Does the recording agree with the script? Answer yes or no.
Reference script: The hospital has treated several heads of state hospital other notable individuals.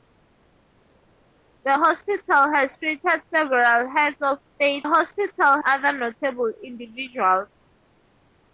yes